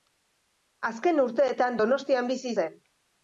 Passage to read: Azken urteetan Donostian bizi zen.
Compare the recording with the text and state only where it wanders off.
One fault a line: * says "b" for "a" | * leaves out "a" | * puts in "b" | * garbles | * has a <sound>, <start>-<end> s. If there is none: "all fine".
all fine